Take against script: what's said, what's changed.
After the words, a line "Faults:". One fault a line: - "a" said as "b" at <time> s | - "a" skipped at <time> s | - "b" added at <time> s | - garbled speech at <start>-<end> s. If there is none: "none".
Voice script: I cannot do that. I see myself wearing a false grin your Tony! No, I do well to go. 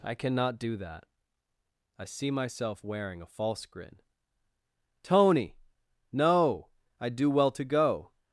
I cannot do that. I see myself wearing a false grin Tony! No, I do well to go.
Faults:
- "your" skipped at 4.0 s